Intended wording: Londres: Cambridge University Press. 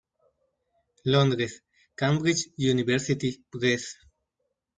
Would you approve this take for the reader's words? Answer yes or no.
yes